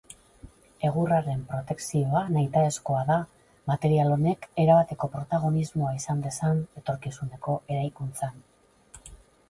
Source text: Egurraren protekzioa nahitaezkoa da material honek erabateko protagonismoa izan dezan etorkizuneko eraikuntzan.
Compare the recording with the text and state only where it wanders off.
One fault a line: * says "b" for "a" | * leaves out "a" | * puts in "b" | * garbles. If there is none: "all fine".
all fine